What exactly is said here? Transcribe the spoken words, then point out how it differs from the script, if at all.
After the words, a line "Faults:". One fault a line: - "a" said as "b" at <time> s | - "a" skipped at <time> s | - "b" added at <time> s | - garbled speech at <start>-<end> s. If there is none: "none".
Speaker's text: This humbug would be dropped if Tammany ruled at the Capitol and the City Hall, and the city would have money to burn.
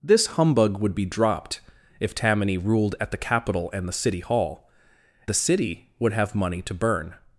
This humbug would be dropped if Tammany ruled at the Capitol and the City Hall, the city would have money to burn.
Faults:
- "and" skipped at 4.7 s